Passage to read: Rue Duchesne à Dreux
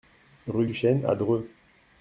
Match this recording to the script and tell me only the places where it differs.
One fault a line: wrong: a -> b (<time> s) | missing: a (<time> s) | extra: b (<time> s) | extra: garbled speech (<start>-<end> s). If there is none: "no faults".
no faults